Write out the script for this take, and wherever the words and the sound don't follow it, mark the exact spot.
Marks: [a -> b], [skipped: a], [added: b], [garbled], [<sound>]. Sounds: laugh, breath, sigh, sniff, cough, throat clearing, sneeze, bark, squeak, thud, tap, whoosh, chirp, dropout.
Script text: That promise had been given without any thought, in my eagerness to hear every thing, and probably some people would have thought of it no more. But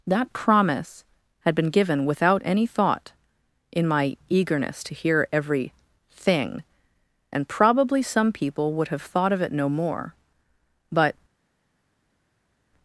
That promise had been given without any thought, in my eagerness to hear every thing, and probably some people would have thought of it no more. But